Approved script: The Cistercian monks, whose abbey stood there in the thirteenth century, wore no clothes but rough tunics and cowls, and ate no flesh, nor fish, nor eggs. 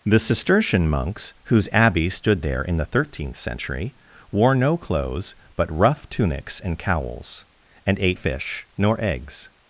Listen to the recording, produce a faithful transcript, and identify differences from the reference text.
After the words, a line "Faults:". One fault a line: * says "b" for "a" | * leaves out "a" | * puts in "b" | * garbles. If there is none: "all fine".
The Cistercian monks, whose abbey stood there in the thirteenth century, wore no clothes but rough tunics and cowls, and ate fish, nor eggs.
Faults:
* leaves out "no flesh nor"